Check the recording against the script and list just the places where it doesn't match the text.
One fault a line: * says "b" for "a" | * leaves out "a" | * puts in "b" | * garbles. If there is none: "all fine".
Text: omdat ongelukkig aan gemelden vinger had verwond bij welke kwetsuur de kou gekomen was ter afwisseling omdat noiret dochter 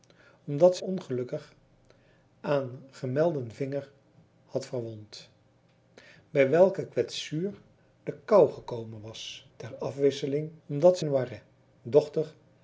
all fine